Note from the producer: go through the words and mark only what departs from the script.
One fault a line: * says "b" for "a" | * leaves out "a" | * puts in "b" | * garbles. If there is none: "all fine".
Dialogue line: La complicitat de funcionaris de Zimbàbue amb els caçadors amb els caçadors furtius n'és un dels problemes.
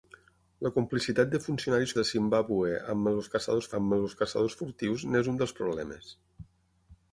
all fine